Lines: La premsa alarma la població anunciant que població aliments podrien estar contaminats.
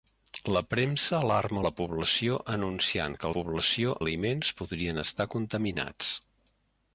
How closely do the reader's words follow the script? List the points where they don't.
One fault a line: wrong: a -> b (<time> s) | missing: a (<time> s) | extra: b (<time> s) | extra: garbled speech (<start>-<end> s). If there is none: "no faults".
no faults